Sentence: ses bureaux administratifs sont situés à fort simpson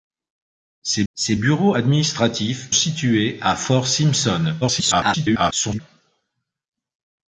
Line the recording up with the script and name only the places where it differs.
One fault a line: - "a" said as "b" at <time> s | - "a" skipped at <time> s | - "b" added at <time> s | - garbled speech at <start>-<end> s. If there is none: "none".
- "ses" added at 1.1 s
- "sont" skipped at 2.7 s
- garbled speech at 4.6-5.8 s